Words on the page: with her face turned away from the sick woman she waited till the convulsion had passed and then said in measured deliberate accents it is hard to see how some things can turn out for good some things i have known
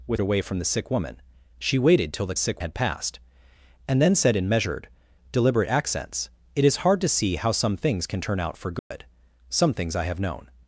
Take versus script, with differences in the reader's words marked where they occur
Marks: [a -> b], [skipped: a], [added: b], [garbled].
with [skipped: her face turned] away from the sick woman she waited till the [convulsion -> sick] had passed and then said in measured deliberate accents it is hard to see how some things can turn out for good some things i have known